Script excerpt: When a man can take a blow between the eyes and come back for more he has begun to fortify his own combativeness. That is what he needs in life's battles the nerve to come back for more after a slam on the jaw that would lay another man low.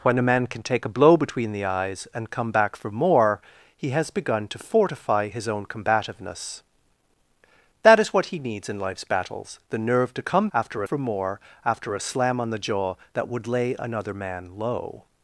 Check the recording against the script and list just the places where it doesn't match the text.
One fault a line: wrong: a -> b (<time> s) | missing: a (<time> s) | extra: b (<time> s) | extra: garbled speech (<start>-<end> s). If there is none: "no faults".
wrong: back -> after (10.5 s)